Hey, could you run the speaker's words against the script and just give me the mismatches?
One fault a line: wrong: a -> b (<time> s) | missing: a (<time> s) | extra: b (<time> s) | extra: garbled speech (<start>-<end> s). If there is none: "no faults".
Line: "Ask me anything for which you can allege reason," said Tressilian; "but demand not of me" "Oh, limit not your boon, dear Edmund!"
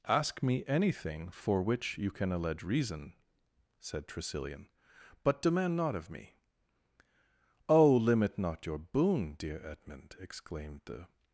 extra: exclaimed the (10.2 s)